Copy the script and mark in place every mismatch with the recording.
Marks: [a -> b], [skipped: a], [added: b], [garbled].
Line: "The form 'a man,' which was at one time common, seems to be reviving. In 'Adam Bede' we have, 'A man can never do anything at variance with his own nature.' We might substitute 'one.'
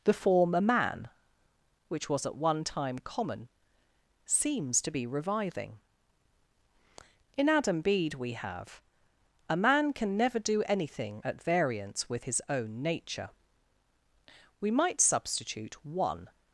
"The form 'a man,' which was at one time common, seems to be reviving. In 'Adam Bede' we have, 'A man can never do anything at variance with his own nature.' We might substitute 'one.'